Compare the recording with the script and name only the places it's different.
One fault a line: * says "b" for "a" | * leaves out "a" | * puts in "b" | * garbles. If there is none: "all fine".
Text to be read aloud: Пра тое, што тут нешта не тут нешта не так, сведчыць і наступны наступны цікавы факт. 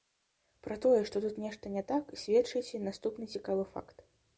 * leaves out "тут нешта не"
* leaves out "наступны"